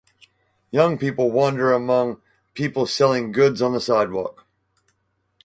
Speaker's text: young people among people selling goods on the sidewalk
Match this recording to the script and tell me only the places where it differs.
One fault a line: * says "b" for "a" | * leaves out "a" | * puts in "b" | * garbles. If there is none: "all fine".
* puts in "wander"